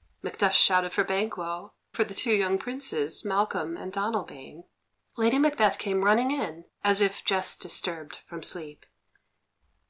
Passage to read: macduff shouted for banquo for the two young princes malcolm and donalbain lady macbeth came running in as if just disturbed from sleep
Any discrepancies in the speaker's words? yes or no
no